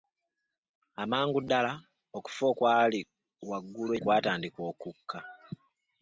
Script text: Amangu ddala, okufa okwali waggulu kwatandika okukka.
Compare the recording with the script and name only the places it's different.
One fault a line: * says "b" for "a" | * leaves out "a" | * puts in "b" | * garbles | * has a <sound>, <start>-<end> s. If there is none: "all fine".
all fine